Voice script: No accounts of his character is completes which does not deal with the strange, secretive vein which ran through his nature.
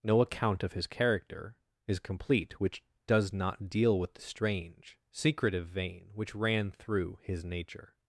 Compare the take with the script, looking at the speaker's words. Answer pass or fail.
fail